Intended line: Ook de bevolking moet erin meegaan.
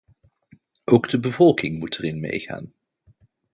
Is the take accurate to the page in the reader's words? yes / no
yes